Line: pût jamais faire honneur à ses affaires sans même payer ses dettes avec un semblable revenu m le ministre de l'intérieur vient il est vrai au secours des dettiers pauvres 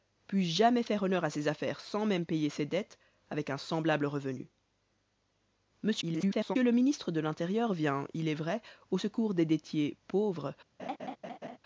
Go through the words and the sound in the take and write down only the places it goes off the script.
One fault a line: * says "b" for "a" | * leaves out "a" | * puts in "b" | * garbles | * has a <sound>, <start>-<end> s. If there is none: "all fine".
* garbles
* has a laugh, 10.8-11.6 s